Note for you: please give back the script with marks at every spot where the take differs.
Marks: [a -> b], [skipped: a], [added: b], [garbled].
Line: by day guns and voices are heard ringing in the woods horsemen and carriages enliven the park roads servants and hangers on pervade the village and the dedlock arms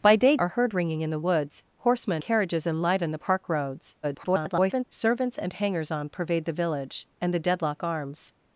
by day [skipped: guns and voices] are heard ringing in the woods horsemen [skipped: and] carriages enliven the park roads [garbled] servants and hangers on pervade the village and the dedlock arms